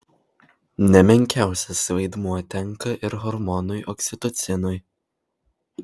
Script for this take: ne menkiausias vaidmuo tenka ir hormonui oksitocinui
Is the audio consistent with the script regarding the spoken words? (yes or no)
yes